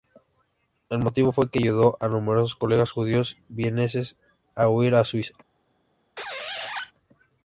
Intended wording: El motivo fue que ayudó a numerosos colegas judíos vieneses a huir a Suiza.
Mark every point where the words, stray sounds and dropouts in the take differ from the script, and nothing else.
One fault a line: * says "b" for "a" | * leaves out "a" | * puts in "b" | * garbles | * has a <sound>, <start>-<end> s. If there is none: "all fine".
* has a squeak, 6.2-6.9 s